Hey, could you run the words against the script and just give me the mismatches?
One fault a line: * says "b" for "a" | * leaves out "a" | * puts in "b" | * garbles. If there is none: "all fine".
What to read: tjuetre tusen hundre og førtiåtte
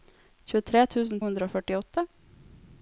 all fine